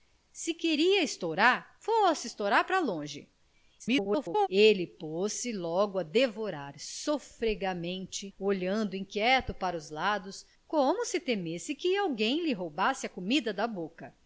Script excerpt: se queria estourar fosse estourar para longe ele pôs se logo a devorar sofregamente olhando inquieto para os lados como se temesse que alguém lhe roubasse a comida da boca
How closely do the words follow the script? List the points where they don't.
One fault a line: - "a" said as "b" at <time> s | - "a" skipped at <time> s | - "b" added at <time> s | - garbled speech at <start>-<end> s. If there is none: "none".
- garbled speech at 3.8-4.5 s